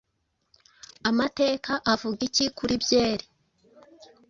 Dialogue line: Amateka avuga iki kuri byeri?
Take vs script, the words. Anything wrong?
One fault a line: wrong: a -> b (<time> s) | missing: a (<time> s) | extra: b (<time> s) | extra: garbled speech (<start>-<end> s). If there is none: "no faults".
no faults